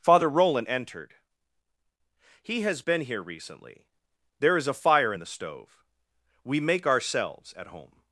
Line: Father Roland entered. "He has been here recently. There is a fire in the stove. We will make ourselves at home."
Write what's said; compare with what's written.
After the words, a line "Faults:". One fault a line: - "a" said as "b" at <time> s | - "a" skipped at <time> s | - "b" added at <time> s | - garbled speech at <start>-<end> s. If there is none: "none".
Father Roland entered. "He has been here recently. There is a fire in the stove. We make ourselves at home."
Faults:
- "will" skipped at 6.6 s